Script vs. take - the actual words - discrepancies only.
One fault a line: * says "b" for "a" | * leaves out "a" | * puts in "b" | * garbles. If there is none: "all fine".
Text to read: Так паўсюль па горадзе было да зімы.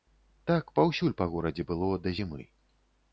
all fine